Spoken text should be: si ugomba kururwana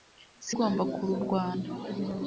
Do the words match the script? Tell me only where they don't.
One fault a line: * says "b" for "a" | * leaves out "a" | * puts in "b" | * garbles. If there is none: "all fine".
all fine